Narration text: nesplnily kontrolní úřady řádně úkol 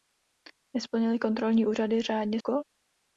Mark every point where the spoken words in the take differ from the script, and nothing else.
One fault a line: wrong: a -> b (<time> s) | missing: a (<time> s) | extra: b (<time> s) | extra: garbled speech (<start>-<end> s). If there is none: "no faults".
no faults